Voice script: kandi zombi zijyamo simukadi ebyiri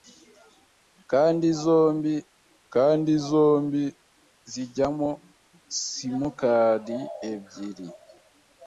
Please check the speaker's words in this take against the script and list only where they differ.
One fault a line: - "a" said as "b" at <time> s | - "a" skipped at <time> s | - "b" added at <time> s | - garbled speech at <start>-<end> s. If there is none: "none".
- "kandi zombi" added at 2.7 s